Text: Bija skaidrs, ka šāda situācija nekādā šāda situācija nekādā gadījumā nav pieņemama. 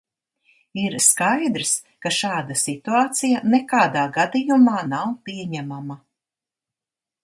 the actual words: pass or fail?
fail